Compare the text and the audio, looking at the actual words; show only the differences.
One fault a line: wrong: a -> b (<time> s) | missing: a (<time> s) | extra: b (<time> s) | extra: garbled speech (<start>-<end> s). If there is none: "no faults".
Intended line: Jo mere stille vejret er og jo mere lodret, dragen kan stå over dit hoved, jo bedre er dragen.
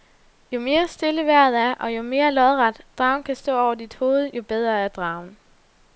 no faults